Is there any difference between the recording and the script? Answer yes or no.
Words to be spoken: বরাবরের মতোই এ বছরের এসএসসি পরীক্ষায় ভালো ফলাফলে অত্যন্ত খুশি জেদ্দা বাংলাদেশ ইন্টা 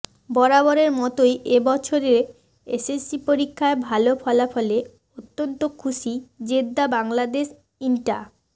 no